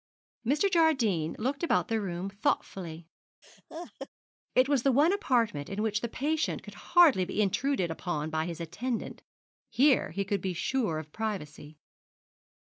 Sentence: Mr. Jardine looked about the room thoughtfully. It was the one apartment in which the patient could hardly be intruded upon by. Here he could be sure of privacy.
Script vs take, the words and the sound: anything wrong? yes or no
yes